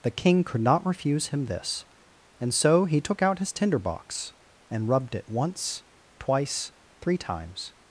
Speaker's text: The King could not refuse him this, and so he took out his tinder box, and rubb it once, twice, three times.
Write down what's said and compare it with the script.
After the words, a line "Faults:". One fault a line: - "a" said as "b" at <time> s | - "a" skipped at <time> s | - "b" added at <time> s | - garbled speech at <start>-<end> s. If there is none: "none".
The King could not refuse him this, and so he took out his tinder box, and rubbed it once, twice, three times.
Faults:
- "rubb" said as "rubbed" at 4.9 s